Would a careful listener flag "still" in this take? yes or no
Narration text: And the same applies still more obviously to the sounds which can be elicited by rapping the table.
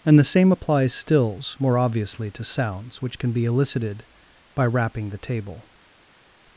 yes